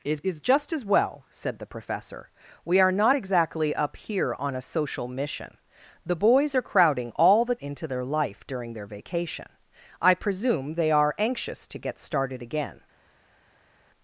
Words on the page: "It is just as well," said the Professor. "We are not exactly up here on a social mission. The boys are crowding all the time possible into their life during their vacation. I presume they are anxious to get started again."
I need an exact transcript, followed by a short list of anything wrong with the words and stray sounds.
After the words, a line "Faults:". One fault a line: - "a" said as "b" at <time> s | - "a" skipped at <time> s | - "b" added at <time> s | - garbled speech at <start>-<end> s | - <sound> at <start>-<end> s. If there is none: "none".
"It is just as well," said the Professor. "We are not exactly up here on a social mission. The boys are crowding all the into their life during their vacation. I presume they are anxious to get started again."
Faults:
- "time possible" skipped at 7.6 s